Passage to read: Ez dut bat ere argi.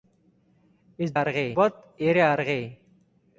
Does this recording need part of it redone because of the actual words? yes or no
yes